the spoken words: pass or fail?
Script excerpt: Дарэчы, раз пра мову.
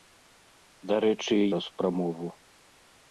pass